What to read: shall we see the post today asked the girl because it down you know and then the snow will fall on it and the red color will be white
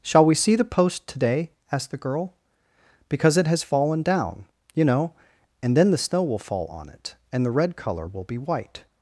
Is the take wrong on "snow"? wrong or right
right